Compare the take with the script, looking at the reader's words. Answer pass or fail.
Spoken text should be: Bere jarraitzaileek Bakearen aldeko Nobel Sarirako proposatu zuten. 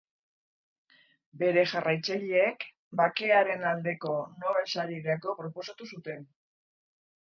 pass